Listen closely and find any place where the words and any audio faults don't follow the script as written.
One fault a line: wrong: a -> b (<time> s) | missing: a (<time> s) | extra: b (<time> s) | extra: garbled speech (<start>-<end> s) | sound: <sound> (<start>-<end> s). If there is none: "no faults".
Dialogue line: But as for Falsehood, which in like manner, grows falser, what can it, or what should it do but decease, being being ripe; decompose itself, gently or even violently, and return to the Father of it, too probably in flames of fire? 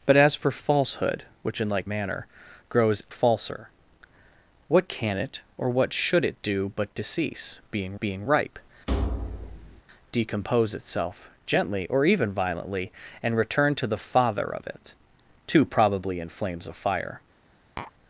sound: thud (8.9-9.8 s)
sound: tap (17.8-17.9 s)